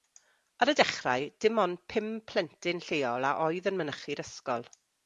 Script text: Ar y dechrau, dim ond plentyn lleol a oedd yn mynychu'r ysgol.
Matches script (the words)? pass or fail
fail